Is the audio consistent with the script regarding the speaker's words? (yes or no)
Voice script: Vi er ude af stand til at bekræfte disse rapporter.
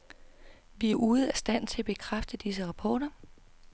yes